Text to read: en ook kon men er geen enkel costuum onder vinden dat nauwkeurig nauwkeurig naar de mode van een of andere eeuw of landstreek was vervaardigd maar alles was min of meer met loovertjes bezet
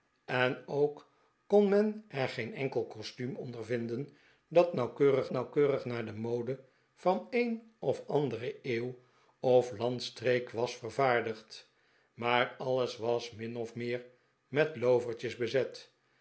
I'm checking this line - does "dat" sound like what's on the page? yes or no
yes